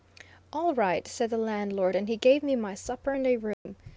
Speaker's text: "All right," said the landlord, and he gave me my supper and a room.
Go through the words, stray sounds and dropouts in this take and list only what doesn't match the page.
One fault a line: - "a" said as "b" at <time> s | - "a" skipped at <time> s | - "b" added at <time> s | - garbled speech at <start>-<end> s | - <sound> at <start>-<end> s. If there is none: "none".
- dropout at 3.5-3.7 s